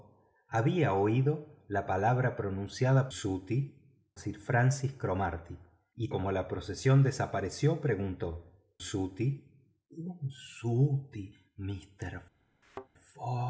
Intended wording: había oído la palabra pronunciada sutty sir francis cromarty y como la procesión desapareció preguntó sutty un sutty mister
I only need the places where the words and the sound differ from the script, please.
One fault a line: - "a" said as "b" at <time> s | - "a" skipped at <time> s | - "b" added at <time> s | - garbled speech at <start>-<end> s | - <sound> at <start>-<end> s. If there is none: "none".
- thud at 12.6-12.9 s